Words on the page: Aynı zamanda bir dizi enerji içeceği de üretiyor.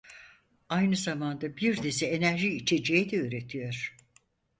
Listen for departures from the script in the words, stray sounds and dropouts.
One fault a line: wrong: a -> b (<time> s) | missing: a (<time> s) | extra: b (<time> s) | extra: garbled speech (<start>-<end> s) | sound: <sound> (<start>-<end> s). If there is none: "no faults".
no faults